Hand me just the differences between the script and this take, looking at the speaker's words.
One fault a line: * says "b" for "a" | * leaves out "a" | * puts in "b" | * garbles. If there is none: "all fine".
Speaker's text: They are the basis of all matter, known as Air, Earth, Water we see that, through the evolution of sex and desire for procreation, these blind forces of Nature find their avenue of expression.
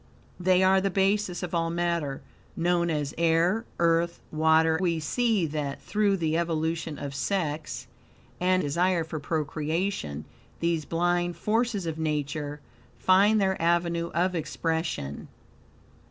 all fine